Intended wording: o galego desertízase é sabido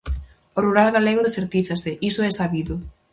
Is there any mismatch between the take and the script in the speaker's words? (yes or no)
yes